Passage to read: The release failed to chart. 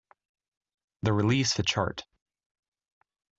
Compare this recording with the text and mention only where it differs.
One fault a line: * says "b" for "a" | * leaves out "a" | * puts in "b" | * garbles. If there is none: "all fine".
* leaves out "failed"